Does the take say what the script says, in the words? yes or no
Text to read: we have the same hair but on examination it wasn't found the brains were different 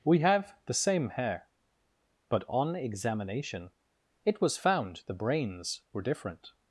no